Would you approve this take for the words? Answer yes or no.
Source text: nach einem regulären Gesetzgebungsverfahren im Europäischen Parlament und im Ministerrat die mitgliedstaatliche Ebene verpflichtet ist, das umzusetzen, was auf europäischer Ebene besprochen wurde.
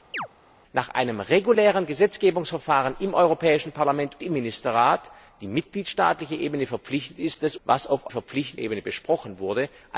no